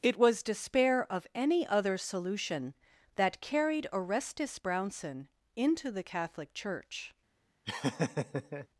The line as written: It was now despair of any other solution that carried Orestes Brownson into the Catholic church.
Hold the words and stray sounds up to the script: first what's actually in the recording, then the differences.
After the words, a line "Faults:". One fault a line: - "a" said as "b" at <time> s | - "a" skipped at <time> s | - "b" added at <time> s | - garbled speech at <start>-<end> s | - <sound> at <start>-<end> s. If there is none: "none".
It was despair of any other solution that carried Orestes Brownson into the Catholic church.
Faults:
- "now" skipped at 0.4 s
- laugh at 7.7-8.7 s